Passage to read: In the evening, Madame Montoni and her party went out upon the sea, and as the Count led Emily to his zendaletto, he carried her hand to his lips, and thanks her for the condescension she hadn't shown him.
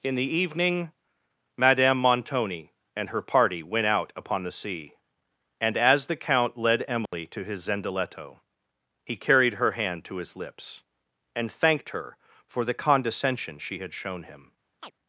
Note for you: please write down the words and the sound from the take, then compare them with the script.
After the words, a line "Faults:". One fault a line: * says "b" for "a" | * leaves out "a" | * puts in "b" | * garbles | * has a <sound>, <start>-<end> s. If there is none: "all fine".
In the evening, Madame Montoni and her party went out upon the sea, and as the Count led Emily to his zendaletto, he carried her hand to his lips, and thanked her for the condescension she had shown him.
Faults:
* has a dropout, 7.1-7.1 s
* says "thanked" for "thanks"
* says "had" for "hadn't"
* has a chirp, 14.8-14.9 s